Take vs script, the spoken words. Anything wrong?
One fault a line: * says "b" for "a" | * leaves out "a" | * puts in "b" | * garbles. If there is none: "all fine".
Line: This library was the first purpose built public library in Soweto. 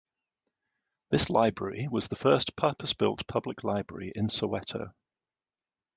all fine